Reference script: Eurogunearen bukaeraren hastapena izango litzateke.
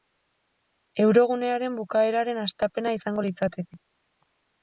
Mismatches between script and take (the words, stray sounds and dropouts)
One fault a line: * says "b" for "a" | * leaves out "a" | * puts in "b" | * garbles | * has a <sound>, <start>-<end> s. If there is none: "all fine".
all fine